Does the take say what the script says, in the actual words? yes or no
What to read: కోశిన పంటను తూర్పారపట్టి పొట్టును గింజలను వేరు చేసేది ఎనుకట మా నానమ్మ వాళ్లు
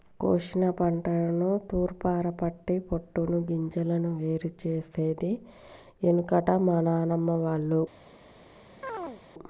yes